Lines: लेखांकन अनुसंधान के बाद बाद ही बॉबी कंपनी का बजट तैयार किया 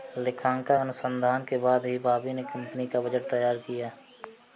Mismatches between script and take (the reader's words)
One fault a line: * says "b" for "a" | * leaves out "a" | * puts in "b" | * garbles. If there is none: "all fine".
* leaves out "बाद"
* puts in "ने"